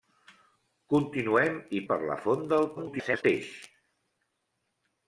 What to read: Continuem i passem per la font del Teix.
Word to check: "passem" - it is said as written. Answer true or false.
false